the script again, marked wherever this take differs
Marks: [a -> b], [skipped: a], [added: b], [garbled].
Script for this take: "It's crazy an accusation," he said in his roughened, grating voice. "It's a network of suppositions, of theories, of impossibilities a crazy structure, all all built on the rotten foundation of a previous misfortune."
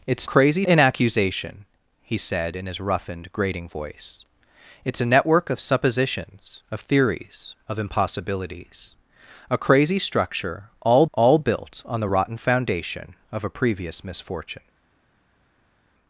"It's crazy an accusation," he said in his roughened, grating voice. "It's a network of suppositions, of theories, of impossibilities a crazy structure, all all built on the rotten foundation of a previous misfortune."